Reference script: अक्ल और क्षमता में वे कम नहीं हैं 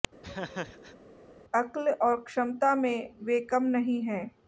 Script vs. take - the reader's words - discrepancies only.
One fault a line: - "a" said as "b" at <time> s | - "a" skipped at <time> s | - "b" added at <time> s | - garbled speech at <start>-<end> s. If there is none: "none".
none